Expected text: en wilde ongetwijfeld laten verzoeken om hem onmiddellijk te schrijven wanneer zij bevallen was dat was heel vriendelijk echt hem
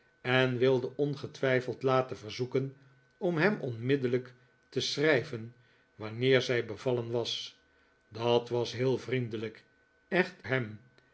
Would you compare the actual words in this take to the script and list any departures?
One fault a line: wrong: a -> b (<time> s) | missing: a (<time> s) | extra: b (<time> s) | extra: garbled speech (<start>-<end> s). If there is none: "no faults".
no faults